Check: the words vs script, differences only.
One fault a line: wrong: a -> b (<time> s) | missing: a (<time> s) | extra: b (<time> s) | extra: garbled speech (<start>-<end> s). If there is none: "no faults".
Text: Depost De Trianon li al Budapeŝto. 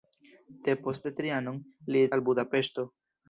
no faults